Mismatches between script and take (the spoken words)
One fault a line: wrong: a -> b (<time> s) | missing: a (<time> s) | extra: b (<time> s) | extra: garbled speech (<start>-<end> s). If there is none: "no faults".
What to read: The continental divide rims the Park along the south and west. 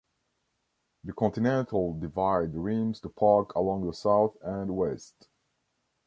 no faults